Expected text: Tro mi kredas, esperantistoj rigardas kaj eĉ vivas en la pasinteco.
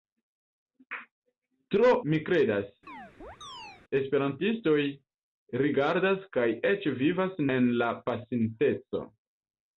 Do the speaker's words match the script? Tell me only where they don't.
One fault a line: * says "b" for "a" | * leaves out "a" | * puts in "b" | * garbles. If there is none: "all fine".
all fine